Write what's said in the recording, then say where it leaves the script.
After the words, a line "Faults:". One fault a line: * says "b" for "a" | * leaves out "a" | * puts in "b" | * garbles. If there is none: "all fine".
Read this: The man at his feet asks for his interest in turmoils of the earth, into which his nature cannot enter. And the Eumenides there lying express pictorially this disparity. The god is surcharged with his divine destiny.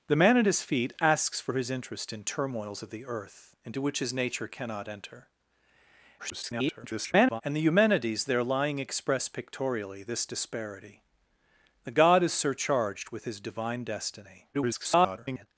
The man at his feet asks for his interest in turmoils of the earth, into which his nature cannot enter. [garbled] And the Eumenides there lying express pictorially this disparity. The god is surcharged with his divine destiny. [garbled]
Faults:
* garbles
* garbles